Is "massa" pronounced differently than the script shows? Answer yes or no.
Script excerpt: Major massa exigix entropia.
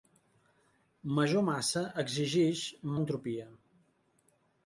no